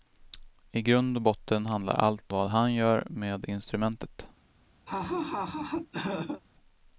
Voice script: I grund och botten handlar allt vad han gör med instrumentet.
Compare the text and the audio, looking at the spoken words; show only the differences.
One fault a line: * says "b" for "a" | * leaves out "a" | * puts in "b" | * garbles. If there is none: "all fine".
all fine